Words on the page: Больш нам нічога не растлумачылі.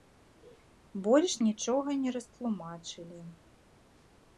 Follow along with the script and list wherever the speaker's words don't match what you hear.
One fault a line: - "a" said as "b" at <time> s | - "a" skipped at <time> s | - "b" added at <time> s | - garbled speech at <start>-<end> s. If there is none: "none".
- "нам" skipped at 1.4 s